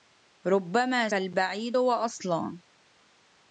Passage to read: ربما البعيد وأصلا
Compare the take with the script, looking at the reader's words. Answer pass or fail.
pass